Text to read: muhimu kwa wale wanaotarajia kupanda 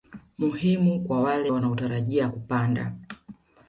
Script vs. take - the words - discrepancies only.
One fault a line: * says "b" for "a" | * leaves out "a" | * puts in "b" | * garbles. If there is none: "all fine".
all fine